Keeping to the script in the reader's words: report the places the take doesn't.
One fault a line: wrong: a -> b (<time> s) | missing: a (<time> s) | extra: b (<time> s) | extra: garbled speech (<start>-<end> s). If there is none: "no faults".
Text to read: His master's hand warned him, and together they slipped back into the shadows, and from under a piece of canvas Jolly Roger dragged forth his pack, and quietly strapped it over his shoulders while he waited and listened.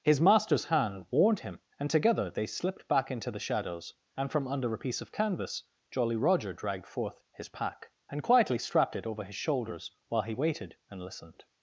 no faults